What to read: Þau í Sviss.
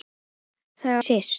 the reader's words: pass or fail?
pass